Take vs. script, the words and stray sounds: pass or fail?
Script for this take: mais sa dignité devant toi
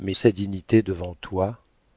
pass